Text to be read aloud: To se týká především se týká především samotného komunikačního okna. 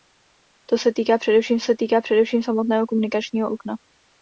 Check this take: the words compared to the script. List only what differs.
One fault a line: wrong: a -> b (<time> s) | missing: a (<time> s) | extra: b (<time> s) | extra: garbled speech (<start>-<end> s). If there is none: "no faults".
no faults